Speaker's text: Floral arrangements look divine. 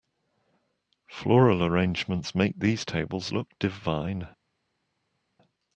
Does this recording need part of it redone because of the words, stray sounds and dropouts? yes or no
yes